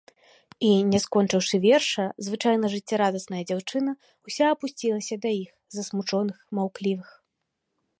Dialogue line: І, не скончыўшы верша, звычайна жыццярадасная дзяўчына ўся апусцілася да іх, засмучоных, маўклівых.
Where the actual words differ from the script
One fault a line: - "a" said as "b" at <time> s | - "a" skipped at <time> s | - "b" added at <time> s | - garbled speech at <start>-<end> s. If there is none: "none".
none